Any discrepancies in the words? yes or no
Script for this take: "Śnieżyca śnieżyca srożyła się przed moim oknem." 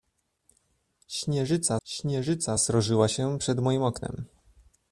no